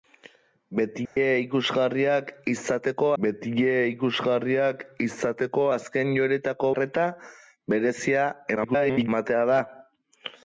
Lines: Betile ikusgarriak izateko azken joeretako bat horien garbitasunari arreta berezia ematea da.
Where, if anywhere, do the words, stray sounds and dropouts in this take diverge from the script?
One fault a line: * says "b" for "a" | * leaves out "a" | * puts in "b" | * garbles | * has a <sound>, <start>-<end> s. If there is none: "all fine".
* has a dropout, 1.1-1.2 s
* says "betile ikusgarriak izateko azken joeretako" for "azken joeretako bat horien garbitasunari"
* garbles